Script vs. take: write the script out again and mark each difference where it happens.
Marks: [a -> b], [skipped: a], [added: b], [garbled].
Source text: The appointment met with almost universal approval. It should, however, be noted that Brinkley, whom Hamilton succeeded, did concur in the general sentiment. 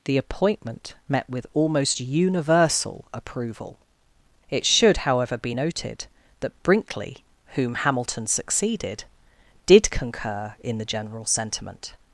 The appointment met with almost universal approval. It should, however, be noted that Brinkley, whom Hamilton succeeded, did concur in the general sentiment.